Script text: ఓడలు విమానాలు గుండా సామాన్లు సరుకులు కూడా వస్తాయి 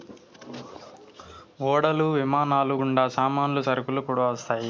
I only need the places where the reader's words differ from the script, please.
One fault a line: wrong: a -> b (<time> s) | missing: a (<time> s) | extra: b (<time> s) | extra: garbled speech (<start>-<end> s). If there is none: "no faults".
no faults